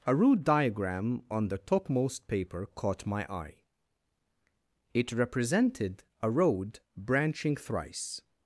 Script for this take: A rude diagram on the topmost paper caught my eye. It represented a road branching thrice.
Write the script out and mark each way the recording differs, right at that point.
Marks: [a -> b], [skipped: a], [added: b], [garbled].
A rude diagram on the topmost paper caught my eye. It represented a road branching thrice.